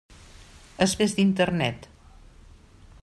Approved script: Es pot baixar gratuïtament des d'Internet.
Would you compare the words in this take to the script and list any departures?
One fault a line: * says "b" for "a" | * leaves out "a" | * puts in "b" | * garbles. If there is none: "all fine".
* leaves out "pot baixar gratuïtament"